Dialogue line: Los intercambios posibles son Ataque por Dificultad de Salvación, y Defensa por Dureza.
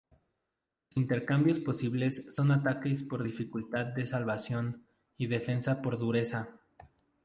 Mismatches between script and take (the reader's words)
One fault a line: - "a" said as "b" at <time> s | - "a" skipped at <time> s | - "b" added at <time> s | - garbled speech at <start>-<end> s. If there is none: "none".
none